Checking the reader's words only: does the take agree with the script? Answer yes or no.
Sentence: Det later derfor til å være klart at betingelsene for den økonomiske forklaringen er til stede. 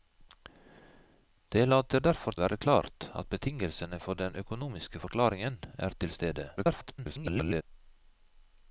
no